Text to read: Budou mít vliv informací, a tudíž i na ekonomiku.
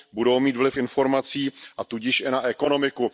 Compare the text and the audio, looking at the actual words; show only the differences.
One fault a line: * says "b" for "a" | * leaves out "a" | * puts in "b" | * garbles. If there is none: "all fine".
all fine